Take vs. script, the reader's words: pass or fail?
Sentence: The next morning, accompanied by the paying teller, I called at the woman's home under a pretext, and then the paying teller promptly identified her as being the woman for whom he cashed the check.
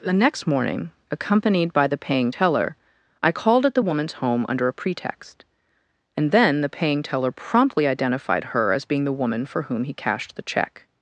pass